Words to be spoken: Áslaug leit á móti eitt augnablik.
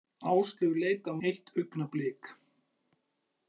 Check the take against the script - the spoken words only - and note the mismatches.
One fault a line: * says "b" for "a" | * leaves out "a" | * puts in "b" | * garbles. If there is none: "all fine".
* leaves out "móti"